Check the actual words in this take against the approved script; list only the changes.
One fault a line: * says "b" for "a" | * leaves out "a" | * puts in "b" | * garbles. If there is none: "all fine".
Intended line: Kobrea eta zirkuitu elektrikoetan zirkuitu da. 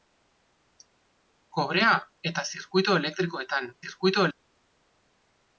all fine